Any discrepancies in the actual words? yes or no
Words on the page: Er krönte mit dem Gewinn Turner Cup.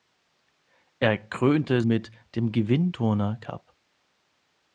no